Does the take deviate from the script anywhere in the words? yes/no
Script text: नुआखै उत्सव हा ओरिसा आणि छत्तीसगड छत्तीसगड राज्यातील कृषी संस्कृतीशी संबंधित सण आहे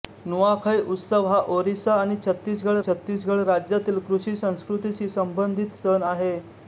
no